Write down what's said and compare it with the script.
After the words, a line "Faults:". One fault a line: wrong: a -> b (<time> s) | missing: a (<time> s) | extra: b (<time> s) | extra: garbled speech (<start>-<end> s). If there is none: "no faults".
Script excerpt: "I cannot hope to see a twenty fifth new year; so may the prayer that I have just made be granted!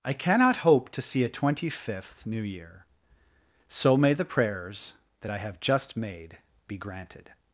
"I cannot hope to see a twenty fifth new year; so may the prayers that I have just made be granted!
Faults:
wrong: prayer -> prayers (4.2 s)